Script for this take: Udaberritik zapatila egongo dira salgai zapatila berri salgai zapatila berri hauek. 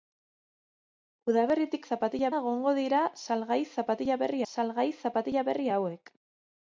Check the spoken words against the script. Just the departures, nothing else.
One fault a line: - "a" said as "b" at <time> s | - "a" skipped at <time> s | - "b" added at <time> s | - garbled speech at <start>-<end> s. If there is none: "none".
none